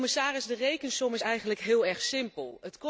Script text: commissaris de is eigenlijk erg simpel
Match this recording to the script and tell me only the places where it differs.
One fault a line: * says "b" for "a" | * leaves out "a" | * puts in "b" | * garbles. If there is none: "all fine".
* puts in "rekensom"
* puts in "heel"